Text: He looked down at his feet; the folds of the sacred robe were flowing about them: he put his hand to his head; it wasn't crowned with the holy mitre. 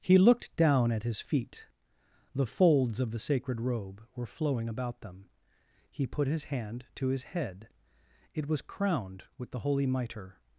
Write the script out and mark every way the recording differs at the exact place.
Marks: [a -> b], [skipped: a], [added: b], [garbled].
He looked down at his feet; the folds of the sacred robe were flowing about them: he put his hand to his head; it [wasn't -> was] crowned with the holy mitre.